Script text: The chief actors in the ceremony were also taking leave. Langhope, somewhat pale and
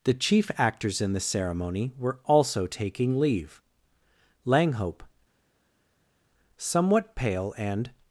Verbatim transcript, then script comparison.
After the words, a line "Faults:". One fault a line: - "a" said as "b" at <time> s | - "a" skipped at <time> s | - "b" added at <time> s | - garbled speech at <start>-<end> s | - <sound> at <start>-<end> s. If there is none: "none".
The chief actors in the ceremony were also taking leave. Langhope, somewhat pale and
Faults:
none